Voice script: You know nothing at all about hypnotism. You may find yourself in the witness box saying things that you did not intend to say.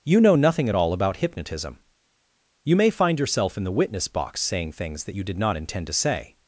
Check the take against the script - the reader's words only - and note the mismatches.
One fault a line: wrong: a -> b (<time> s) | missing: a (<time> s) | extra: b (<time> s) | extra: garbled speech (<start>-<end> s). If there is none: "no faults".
no faults